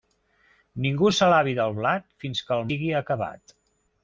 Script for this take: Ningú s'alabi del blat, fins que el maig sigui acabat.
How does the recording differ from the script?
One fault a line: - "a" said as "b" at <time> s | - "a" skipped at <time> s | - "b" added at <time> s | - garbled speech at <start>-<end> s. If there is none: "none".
- "maig" skipped at 2.7 s